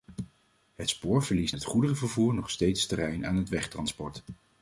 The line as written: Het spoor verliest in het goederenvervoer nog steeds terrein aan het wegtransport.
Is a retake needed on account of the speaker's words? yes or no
yes